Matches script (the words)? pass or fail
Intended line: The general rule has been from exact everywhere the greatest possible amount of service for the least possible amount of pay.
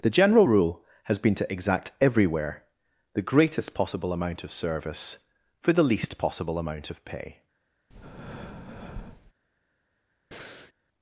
fail